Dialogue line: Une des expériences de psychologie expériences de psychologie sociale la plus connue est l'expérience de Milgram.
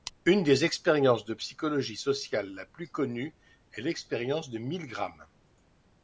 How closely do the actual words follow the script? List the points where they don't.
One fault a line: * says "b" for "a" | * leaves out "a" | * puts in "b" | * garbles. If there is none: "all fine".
* leaves out "expériences de psychologie"